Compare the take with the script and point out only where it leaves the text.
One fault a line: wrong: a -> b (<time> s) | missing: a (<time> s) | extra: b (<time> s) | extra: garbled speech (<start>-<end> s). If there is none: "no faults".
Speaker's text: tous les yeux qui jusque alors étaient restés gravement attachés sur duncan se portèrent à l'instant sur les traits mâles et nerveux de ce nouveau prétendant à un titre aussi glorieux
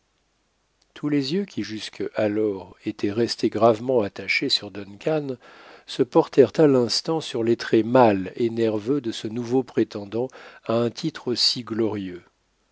no faults